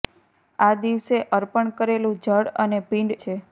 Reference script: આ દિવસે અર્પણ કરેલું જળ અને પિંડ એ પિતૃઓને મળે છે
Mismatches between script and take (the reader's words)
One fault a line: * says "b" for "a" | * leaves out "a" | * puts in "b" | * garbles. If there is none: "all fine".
* leaves out "એ પિતૃઓને મળે"